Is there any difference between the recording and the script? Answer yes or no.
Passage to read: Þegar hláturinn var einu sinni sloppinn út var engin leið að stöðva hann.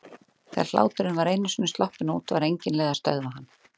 no